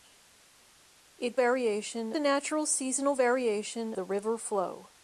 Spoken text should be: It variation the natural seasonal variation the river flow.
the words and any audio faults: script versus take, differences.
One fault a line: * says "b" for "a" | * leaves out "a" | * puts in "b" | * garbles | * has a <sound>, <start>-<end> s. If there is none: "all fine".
all fine